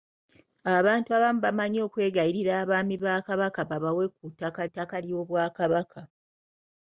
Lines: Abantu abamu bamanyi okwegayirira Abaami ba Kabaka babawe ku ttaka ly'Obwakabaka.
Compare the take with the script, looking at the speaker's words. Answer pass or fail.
fail